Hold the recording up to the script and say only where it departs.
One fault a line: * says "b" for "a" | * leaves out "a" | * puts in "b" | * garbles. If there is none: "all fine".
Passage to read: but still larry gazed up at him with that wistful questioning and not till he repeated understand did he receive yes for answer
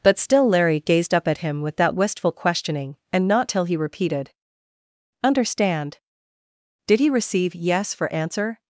all fine